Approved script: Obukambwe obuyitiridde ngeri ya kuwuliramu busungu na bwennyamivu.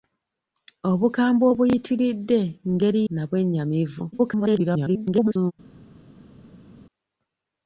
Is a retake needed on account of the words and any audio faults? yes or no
yes